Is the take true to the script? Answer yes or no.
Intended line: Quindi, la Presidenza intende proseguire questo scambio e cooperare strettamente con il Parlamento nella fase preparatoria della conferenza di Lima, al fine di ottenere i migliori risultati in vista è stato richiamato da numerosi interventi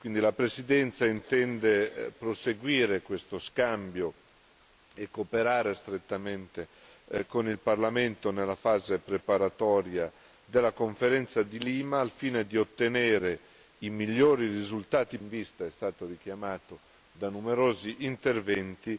yes